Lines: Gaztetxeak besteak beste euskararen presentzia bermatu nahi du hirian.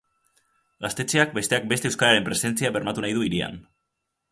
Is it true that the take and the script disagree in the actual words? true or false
false